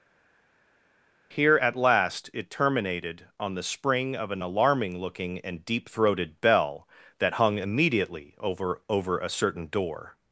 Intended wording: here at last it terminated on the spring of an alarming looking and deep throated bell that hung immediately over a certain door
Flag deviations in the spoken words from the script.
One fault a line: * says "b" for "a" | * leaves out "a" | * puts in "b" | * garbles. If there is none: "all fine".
* puts in "over"